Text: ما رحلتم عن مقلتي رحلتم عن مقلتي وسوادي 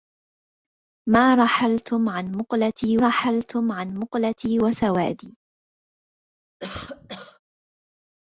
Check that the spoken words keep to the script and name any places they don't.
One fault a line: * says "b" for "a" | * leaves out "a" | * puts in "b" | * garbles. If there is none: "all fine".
all fine